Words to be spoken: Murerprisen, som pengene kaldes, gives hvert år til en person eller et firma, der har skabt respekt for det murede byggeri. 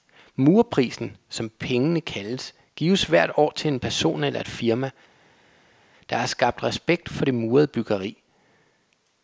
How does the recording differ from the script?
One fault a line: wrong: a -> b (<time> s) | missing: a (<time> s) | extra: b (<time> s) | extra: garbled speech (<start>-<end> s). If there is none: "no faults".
no faults